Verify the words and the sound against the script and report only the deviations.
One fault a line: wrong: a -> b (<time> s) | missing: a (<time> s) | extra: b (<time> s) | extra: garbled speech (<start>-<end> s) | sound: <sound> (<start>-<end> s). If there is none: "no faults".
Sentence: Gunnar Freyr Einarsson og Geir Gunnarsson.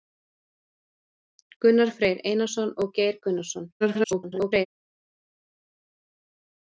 extra: garbled speech (3.8-4.7 s)